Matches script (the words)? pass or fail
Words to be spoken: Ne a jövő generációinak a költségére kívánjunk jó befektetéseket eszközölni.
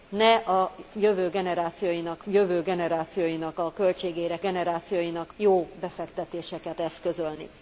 fail